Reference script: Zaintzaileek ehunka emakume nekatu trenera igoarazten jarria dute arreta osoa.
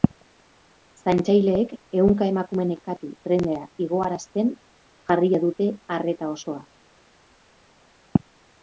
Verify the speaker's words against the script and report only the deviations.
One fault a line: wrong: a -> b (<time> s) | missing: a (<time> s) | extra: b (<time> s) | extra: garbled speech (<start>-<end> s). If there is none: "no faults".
no faults